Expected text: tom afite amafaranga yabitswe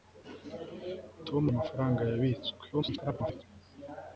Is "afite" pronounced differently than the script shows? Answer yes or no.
yes